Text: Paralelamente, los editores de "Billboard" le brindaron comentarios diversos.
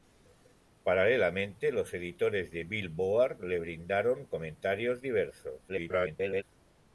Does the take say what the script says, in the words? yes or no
no